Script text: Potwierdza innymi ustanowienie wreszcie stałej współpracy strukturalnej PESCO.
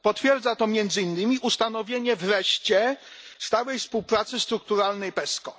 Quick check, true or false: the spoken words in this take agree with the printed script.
false